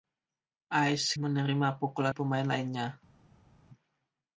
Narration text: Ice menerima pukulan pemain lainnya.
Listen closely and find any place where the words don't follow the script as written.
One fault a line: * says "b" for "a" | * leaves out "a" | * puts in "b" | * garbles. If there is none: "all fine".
all fine